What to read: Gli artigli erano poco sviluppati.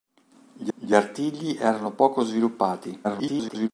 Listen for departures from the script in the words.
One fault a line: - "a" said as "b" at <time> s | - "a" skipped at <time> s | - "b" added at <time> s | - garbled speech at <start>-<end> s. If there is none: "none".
- "gli" added at 0.7 s
- garbled speech at 3.0-3.7 s